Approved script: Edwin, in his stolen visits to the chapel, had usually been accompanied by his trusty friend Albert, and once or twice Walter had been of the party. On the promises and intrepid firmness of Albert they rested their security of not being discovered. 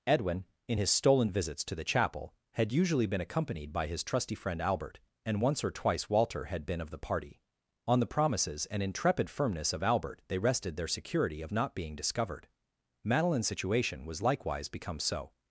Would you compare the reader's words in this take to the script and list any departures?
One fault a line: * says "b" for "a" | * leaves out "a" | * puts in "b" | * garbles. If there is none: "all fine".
* puts in "Madeline's situation was likewise become so"